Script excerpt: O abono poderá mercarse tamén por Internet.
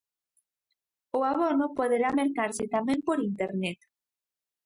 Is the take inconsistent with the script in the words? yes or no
no